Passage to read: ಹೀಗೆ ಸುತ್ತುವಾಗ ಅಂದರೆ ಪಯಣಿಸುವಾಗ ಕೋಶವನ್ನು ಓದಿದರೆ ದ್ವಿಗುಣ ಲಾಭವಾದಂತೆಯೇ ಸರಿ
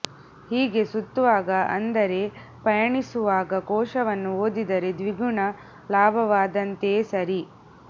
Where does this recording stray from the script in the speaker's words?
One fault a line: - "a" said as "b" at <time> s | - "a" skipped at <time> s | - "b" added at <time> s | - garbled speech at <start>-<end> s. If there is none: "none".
none